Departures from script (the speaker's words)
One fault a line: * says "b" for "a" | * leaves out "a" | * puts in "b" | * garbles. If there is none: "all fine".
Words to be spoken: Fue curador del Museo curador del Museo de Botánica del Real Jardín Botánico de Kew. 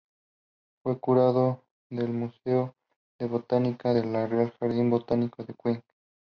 * leaves out "curador del Museo"